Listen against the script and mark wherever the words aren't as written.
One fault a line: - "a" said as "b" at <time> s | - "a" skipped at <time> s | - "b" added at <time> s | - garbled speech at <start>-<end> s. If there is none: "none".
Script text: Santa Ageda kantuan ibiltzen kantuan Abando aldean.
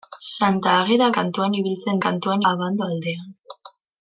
none